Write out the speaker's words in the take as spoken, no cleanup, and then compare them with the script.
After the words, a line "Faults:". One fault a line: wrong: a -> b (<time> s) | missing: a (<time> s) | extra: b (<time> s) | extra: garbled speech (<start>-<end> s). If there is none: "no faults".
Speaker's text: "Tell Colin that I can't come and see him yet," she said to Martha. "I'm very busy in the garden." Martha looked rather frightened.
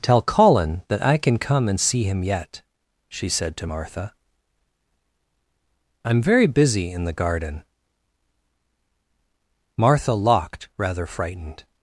"Tell Colin that I can come and see him yet," she said to Martha. "I'm very busy in the garden." Martha locked rather frightened.
Faults:
wrong: can't -> can (1.2 s)
wrong: looked -> locked (10.1 s)